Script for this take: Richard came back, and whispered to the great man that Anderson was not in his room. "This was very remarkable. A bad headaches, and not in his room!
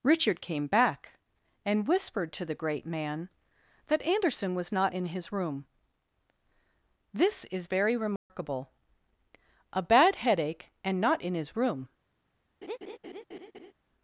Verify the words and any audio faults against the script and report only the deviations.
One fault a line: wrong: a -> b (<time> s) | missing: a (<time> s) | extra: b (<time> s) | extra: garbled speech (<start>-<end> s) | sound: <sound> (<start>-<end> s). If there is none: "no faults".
wrong: was -> is (7.5 s)
sound: dropout (8.2-8.3 s)
wrong: headaches -> headache (10.2 s)
sound: laugh (12.6-13.7 s)